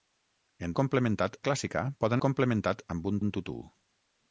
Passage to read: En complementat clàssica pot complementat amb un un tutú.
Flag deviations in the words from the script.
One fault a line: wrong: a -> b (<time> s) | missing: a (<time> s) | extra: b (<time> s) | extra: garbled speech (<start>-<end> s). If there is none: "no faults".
no faults